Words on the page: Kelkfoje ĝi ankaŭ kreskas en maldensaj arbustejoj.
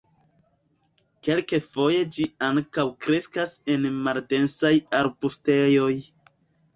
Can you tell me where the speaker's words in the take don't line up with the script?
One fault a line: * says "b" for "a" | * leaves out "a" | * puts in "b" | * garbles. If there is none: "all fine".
all fine